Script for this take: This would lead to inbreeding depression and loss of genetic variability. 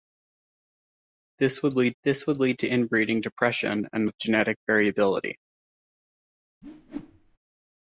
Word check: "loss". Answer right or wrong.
wrong